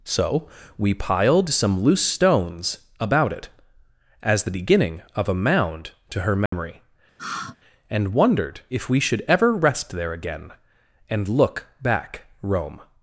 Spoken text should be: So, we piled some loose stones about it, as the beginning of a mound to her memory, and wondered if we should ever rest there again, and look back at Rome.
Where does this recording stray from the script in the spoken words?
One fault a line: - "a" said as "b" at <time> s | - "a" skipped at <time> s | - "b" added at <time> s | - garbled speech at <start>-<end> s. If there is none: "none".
- "at" skipped at 12.2 s